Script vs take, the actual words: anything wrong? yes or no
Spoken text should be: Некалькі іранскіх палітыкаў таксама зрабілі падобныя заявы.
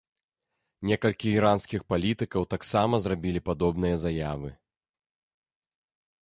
no